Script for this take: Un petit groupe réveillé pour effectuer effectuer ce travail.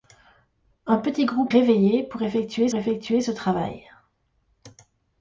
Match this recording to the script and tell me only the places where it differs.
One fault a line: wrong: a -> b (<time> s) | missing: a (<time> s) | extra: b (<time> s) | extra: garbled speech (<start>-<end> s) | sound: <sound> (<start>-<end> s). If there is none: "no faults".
no faults